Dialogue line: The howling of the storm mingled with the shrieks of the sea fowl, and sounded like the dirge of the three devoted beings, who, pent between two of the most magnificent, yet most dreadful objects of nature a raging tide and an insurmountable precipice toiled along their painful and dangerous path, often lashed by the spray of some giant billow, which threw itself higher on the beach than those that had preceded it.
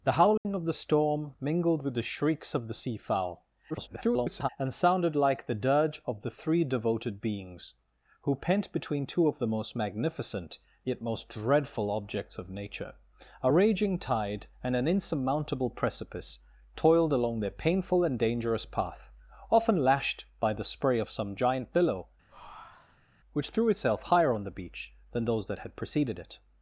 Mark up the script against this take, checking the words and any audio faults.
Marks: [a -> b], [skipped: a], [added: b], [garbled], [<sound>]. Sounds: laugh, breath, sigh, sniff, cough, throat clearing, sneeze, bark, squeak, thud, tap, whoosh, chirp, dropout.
The howling [dropout] of the storm mingled with the shrieks of the sea fowl, [garbled] and sounded like the dirge of the three devoted beings, who, pent between two of the most magnificent, yet most dreadful objects of nature a raging tide and an insurmountable precipice toiled along their painful and dangerous path, often lashed by the spray of some giant billow, [breath] which threw itself higher on the beach than those that had preceded it.